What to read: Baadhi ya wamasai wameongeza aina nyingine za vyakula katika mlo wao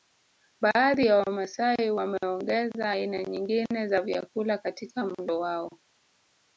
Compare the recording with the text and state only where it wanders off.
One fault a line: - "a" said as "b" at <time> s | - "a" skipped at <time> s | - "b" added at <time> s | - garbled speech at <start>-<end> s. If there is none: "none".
none